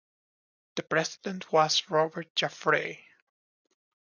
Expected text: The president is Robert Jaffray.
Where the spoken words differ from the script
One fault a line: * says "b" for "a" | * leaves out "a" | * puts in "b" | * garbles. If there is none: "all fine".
* says "was" for "is"